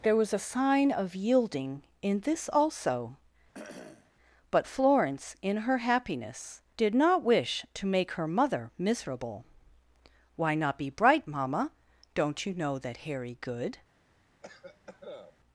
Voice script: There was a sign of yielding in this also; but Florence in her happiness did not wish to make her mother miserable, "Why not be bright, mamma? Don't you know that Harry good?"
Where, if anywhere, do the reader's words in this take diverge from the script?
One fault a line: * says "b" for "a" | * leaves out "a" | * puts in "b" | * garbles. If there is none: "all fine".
all fine